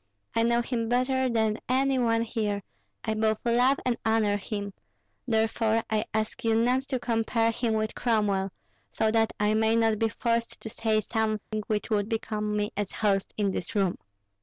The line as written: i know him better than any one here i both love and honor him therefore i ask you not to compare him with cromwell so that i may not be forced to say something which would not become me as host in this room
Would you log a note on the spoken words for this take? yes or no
yes